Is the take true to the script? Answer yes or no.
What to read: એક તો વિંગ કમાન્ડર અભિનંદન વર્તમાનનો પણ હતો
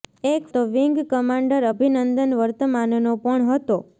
yes